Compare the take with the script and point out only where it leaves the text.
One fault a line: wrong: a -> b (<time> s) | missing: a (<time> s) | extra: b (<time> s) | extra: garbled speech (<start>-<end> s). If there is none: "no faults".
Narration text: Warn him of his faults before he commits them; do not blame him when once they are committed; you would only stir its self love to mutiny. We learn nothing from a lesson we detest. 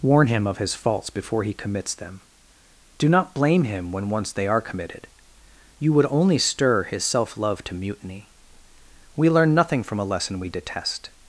wrong: its -> his (6.8 s)